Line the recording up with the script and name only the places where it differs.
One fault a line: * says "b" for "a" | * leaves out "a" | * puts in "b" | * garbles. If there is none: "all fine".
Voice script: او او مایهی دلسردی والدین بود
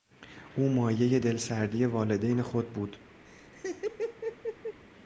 * leaves out "او"
* puts in "خود"